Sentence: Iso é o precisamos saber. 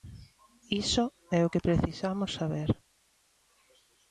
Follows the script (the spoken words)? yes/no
no